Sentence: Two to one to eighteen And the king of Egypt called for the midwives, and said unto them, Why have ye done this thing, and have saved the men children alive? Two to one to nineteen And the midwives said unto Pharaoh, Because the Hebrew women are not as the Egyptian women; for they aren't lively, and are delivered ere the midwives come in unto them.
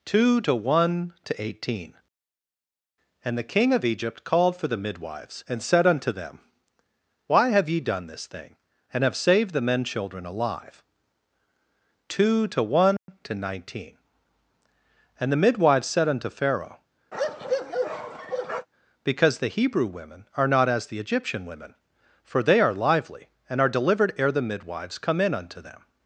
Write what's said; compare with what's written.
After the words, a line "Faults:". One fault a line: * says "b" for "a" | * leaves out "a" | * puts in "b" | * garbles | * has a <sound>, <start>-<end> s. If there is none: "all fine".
Two to one to eighteen And the king of Egypt called for the midwives, and said unto them, Why have ye done this thing, and have saved the men children alive? Two to one to nineteen And the midwives said unto Pharaoh, Because the Hebrew women are not as the Egyptian women; for they are lively, and are delivered ere the midwives come in unto them.
Faults:
* has a dropout, 13.0-13.1 s
* has a bark, 17.1-18.7 s
* says "are" for "aren't"